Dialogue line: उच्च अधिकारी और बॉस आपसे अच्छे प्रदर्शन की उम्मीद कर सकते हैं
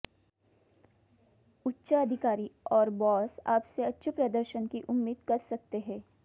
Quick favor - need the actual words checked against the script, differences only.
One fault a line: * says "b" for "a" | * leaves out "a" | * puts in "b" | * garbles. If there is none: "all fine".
all fine